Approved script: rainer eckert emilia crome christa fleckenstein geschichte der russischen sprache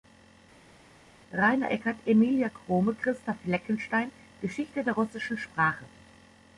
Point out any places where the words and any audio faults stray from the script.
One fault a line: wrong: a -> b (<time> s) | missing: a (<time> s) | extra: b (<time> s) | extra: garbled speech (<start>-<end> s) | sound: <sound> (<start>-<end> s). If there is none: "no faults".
no faults